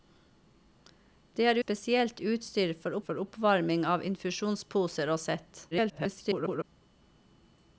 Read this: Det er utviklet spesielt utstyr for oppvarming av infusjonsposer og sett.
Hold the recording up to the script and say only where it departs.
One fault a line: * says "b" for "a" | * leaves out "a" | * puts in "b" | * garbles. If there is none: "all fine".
* leaves out "utviklet"
* puts in "for"
* garbles